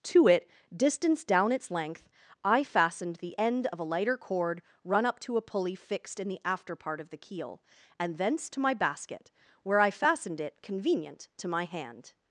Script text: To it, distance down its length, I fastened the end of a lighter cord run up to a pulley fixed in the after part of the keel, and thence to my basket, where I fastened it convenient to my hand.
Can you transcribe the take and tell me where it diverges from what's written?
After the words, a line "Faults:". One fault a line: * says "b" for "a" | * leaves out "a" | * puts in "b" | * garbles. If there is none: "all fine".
To it, distance down its length, I fastened the end of a lighter cord run up to a pulley fixed in the after part of the keel, and thence to my basket, where I fastened it convenient to my hand.
Faults:
all fine